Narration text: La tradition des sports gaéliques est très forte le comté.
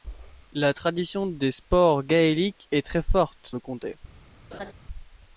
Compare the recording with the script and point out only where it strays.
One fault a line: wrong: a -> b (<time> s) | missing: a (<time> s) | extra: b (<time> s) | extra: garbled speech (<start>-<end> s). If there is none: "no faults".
no faults